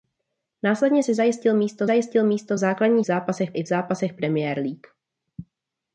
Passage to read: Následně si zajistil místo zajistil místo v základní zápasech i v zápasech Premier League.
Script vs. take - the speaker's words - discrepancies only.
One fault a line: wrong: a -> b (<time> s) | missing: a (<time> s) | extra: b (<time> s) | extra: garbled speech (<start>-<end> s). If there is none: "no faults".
no faults